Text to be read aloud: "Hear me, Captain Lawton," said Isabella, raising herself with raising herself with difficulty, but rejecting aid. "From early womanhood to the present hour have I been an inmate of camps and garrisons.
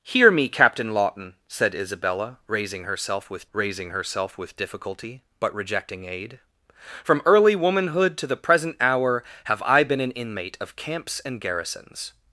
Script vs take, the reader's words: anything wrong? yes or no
no